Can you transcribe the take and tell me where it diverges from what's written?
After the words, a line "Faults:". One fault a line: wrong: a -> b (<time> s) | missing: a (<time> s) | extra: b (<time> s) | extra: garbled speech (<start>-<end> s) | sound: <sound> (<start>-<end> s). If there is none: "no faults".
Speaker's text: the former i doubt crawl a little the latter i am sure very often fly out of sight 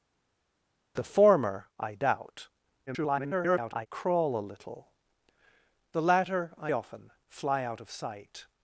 the former i doubt [garbled] crawl a little the latter i often fly out of sight
Faults:
extra: garbled speech (2.9-3.9 s)
missing: am sure very (6.7 s)